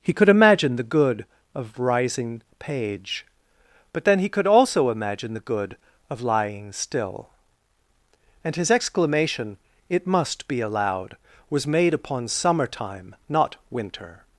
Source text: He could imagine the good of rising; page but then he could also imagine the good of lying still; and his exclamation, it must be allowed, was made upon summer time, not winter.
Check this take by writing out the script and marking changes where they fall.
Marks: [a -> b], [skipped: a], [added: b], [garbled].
He could imagine the good of rising; page but then he could also imagine the good of lying still; and his exclamation, it must be allowed, was made upon summer time, not winter.